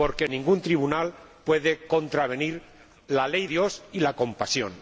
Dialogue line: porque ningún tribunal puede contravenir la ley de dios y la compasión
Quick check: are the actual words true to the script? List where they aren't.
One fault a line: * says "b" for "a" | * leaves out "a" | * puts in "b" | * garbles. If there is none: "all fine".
* leaves out "de"